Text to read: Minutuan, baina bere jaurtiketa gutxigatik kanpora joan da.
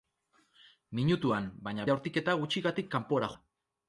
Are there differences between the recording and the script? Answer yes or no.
yes